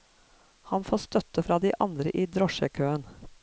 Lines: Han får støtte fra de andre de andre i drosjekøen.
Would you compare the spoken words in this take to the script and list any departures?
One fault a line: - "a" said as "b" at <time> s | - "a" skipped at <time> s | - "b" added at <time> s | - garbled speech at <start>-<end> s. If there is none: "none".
- "de andre" skipped at 2.1 s